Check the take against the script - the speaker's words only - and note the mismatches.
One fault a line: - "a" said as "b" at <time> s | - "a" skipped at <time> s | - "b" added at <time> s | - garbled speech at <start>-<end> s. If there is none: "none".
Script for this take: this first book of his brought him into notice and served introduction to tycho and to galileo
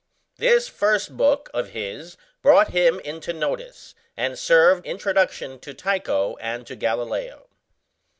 none